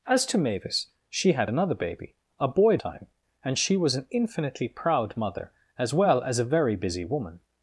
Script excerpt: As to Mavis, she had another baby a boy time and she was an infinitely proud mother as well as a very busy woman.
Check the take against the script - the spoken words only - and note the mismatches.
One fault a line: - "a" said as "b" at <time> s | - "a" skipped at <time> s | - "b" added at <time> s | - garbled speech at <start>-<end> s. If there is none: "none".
none